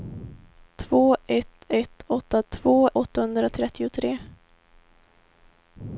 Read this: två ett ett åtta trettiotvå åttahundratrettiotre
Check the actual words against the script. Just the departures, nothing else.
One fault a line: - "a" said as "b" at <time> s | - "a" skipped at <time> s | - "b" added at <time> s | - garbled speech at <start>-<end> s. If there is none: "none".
- "trettiotvå" said as "två" at 2.5 s